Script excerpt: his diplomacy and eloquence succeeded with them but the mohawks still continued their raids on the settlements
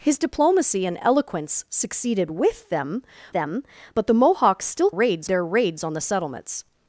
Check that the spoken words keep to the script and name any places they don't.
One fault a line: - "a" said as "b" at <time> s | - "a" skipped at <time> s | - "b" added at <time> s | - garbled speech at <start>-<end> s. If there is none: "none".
- "them" added at 3.3 s
- "continued" said as "raids" at 4.9 s